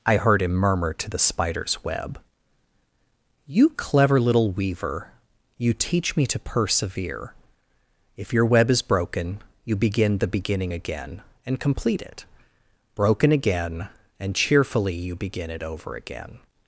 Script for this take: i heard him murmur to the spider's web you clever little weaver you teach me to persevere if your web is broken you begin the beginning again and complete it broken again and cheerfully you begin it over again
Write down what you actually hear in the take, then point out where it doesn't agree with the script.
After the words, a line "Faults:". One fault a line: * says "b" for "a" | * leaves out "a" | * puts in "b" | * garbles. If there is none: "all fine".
i heard him murmur to the spider's web you clever little weaver you teach me to persevere if your web is broken you begin the beginning again and complete it broken again and cheerfully you begin it over again
Faults:
all fine